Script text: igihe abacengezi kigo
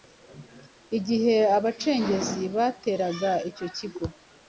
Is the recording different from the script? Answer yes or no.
yes